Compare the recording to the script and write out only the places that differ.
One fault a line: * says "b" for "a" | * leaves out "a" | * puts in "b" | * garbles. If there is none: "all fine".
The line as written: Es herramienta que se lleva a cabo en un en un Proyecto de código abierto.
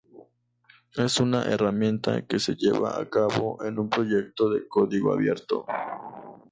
* puts in "una"
* leaves out "en un"